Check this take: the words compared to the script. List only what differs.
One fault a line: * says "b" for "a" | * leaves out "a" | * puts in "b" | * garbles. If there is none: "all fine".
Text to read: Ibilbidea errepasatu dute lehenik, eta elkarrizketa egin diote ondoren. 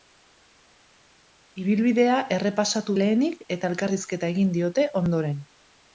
* leaves out "dute"